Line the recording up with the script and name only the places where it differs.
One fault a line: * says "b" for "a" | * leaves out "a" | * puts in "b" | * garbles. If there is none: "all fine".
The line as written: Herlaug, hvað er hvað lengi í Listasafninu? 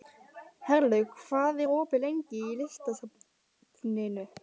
* says "opið" for "hvað"